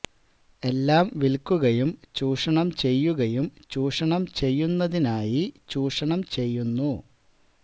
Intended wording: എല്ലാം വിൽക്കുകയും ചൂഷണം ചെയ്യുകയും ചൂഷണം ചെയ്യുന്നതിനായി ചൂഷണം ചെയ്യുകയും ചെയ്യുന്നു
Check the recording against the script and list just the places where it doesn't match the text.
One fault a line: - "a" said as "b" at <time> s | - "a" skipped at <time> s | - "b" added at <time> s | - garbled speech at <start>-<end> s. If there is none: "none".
- "ചെയ്യുകയും" skipped at 6.2 s